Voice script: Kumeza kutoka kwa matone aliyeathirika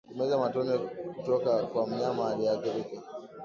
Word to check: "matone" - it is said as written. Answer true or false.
false